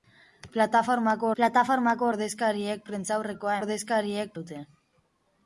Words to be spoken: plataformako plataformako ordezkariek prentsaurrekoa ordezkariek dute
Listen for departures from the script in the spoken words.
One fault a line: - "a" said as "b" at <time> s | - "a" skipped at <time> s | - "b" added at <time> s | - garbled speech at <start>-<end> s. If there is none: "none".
none